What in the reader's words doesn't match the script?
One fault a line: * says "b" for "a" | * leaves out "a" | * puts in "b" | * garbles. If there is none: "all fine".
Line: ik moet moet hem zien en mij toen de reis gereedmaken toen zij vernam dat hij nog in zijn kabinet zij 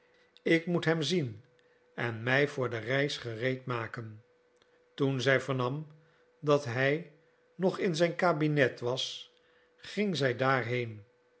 * leaves out "moet"
* says "voor" for "toen"
* puts in "was ging"